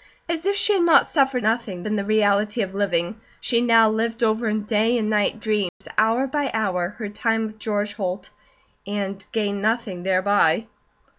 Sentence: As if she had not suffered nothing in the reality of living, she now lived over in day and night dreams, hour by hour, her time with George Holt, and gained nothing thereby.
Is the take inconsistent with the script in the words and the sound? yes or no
yes